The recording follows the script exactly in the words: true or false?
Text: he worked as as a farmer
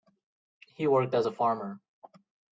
false